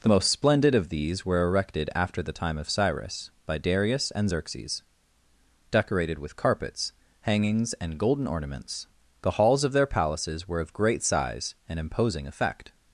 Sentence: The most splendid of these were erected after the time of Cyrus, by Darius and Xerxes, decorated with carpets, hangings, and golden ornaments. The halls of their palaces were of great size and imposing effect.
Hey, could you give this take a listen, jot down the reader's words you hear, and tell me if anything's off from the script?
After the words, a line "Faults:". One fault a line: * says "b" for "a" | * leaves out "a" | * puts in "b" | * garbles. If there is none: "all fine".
The most splendid of these were erected after the time of Cyrus, by Darius and Xerxes, decorated with carpets, hangings, and golden ornaments. The halls of their palaces were of great size and imposing effect.
Faults:
all fine